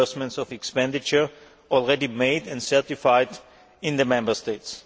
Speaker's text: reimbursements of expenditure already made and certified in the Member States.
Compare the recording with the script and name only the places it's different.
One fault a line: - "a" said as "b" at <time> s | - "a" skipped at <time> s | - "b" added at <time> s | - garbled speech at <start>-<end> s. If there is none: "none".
none